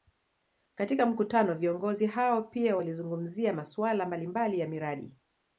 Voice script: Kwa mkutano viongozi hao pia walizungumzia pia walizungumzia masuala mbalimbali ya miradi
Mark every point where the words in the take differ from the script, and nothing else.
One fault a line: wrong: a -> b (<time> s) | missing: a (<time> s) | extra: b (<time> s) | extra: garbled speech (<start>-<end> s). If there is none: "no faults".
wrong: Kwa -> Katika (0.8 s)
missing: pia walizungumzia (3.5 s)